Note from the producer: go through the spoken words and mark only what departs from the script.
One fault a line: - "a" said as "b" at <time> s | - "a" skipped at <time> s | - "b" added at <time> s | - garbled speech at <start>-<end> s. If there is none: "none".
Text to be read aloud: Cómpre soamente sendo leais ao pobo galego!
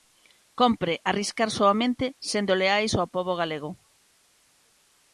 - "arriscar" added at 1.1 s